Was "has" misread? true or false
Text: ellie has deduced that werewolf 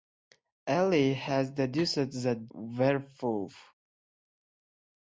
false